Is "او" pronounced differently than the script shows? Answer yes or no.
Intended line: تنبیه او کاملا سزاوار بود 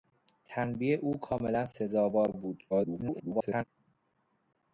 no